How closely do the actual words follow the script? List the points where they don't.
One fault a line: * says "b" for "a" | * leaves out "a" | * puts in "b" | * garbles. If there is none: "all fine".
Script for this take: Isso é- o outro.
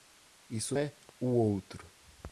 all fine